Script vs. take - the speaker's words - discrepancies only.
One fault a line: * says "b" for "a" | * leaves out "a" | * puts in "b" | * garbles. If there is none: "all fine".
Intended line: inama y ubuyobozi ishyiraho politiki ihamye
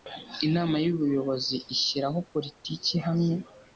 all fine